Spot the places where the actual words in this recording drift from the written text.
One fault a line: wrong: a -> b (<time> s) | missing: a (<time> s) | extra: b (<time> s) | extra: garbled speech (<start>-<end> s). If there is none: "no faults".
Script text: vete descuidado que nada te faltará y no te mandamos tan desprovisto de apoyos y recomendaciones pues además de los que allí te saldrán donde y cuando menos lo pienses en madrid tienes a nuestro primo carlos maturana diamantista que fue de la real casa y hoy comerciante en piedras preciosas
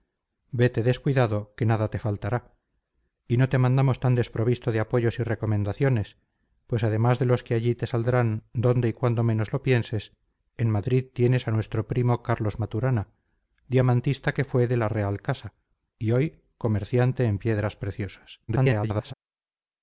extra: garbled speech (18.5-19.1 s)